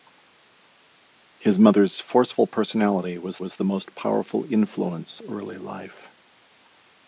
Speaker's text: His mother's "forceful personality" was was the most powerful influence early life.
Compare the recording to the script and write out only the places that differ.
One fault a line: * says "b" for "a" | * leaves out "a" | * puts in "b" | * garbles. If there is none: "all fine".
all fine